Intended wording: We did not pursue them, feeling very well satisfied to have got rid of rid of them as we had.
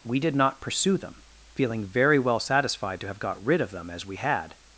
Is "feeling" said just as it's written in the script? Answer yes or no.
yes